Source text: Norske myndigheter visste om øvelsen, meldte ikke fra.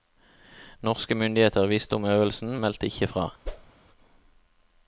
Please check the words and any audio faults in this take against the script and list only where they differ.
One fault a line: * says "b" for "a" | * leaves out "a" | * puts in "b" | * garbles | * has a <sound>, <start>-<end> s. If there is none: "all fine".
* has a whoosh, 3.4-3.7 s